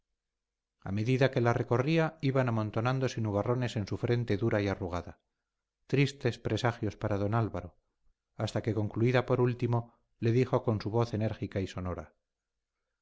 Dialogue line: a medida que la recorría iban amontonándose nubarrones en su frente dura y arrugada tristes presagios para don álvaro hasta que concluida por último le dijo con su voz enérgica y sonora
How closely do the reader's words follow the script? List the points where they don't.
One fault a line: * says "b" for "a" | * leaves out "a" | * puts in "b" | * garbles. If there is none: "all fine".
all fine